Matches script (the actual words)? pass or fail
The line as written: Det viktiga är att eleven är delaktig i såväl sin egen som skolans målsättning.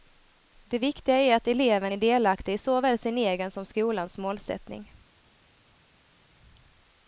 pass